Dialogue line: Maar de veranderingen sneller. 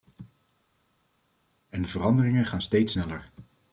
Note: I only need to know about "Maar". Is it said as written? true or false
false